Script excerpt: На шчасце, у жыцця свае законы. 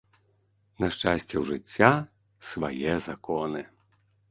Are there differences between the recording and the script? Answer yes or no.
no